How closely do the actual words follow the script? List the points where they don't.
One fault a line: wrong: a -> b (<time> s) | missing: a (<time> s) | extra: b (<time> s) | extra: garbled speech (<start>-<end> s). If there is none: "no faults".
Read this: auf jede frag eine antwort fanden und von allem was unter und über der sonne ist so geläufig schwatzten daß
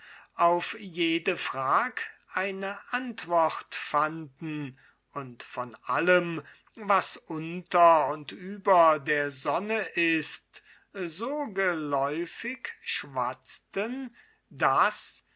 no faults